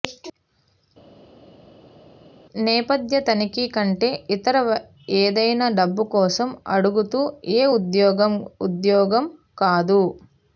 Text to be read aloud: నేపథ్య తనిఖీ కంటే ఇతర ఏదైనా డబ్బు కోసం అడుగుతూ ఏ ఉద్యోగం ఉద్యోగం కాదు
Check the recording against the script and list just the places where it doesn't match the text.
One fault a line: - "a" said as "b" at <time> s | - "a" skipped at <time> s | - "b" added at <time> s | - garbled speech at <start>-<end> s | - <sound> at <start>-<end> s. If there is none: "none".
none